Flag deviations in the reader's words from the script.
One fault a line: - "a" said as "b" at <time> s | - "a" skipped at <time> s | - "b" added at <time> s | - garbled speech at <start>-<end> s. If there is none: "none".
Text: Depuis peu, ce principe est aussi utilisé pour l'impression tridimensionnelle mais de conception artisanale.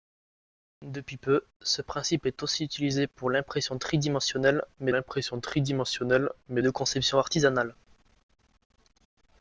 - "l'impression tridimensionnelle mais" added at 4.9 s